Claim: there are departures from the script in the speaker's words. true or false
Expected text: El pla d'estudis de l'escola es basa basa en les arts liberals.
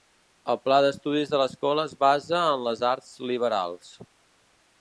true